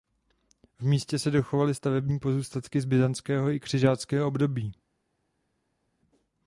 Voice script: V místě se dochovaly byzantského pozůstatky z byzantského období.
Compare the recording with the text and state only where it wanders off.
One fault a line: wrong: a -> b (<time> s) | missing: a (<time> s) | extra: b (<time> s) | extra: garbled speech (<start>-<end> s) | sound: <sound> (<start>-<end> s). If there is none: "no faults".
wrong: byzantského -> stavební (1.7 s)
extra: i křižáckého (3.5 s)